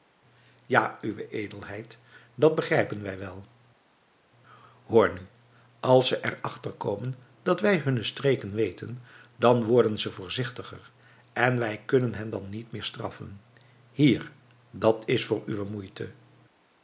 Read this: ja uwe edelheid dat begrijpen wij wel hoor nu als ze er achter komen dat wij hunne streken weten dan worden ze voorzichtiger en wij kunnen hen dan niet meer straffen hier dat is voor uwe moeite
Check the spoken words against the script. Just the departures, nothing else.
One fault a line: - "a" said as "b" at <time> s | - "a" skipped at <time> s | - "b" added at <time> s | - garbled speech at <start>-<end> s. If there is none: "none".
none